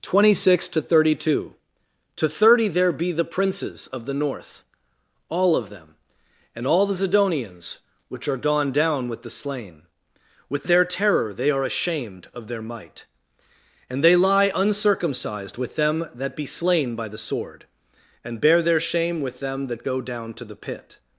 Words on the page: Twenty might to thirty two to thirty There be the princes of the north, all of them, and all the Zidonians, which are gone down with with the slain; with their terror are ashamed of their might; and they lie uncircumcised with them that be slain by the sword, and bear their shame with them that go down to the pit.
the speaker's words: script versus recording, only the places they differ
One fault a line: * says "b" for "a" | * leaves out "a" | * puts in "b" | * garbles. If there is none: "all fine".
* says "six" for "might"
* leaves out "with"
* puts in "they"